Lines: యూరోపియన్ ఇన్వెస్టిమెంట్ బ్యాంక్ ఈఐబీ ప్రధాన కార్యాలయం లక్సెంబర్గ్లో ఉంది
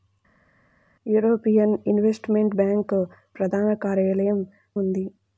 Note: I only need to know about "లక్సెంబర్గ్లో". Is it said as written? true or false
false